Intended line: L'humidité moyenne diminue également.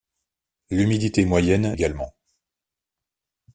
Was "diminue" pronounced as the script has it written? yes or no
no